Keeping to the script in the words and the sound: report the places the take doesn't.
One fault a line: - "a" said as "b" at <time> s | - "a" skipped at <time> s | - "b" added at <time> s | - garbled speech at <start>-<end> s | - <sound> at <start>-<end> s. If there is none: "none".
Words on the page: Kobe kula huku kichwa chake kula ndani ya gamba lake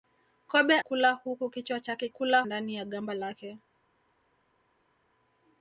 none